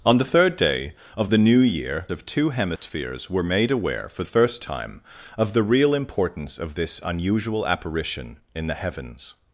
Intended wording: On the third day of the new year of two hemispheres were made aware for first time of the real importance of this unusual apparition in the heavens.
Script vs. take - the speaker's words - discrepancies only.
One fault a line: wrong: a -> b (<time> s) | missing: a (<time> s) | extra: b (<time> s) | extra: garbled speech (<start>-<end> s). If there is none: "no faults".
no faults